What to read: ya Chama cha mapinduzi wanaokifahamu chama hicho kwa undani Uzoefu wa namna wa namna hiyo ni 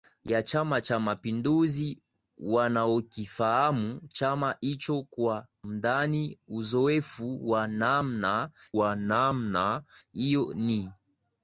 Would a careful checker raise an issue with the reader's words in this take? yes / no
no